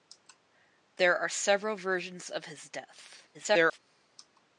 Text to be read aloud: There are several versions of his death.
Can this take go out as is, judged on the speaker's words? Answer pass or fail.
fail